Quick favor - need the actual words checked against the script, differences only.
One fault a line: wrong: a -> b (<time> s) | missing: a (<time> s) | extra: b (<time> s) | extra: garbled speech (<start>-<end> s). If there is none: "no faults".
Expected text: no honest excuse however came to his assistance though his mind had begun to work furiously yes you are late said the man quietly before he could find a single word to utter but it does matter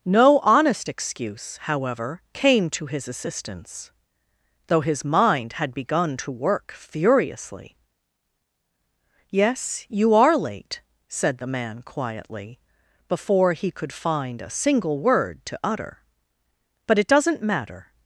wrong: does -> doesn't (17.1 s)